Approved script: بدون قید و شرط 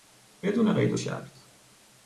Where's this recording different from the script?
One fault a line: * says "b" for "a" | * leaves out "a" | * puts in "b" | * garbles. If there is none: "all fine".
all fine